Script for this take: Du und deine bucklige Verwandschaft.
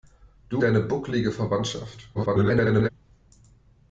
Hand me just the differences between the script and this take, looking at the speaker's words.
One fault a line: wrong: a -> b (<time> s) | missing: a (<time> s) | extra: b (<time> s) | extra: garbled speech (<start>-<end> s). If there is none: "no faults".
missing: und (0.6 s)
extra: garbled speech (2.1-2.9 s)